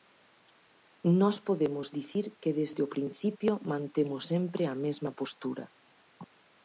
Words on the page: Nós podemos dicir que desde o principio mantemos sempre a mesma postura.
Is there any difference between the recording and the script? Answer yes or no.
no